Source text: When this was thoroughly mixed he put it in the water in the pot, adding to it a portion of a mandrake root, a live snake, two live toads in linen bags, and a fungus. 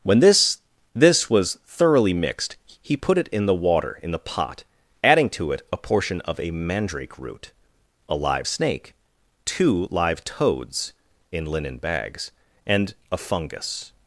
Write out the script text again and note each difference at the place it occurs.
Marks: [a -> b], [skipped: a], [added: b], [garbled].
When this [added: this] was thoroughly mixed he put it in the water in the pot, adding to it a portion of a mandrake root, a live snake, two live toads in linen bags, and a fungus.